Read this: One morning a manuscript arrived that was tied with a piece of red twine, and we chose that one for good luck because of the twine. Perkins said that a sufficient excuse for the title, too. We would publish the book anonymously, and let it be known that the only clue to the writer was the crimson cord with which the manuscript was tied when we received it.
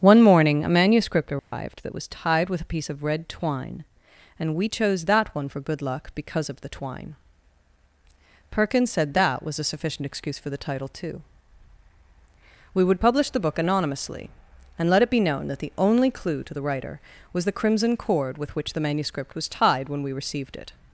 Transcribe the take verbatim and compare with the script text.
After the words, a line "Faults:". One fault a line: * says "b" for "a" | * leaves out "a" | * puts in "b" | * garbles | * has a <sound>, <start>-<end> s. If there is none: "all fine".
One morning a manuscript arrived that was tied with a piece of red twine, and we chose that one for good luck because of the twine. Perkins said that was a sufficient excuse for the title, too. We would publish the book anonymously, and let it be known that the only clue to the writer was the crimson cord with which the manuscript was tied when we received it.
Faults:
* has a dropout, 1.4-1.5 s
* puts in "was"